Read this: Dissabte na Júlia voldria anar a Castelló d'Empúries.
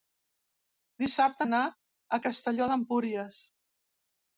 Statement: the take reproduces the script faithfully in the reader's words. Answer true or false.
false